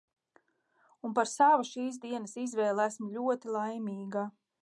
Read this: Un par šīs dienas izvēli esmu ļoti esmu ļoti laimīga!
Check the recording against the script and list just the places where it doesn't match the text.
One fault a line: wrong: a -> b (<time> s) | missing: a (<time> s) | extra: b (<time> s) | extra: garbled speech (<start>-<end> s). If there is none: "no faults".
extra: savu (1.3 s)
missing: esmu ļoti (3.5 s)